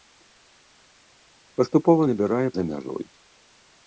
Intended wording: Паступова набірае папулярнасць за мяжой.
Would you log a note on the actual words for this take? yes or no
yes